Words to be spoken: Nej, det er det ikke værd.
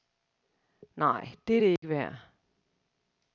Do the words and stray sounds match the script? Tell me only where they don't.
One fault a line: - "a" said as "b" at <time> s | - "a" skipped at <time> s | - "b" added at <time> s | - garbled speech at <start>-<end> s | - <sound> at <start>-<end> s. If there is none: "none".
- dropout at 1.8-1.8 s